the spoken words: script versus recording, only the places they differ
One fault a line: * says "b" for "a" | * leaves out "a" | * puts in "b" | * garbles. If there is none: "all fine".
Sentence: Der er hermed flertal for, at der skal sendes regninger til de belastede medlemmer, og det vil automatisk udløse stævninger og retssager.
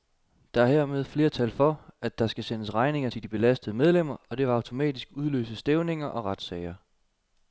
all fine